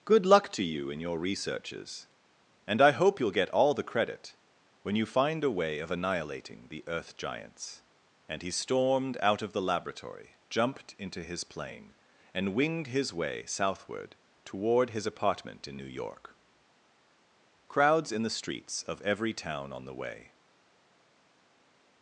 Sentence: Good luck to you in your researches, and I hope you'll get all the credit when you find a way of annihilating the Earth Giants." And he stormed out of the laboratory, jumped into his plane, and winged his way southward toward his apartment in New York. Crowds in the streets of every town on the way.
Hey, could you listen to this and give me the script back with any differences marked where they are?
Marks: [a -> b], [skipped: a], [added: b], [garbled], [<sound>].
Good luck to you in your researches, and I hope you'll get all the credit when you find a way of annihilating the Earth Giants." And he stormed out of the laboratory, jumped into his plane, and winged his way southward toward his apartment in New York. Crowds in the streets of every town on the way.